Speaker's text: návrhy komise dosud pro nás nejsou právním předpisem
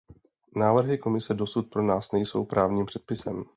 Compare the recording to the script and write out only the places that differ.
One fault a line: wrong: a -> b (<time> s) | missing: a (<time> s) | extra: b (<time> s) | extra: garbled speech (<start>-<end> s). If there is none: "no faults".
no faults